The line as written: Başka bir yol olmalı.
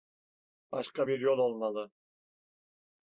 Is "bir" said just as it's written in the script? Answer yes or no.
yes